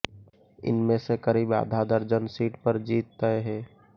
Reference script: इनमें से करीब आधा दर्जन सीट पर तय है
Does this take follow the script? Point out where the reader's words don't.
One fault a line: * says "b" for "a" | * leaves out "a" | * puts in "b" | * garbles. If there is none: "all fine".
* puts in "जीत"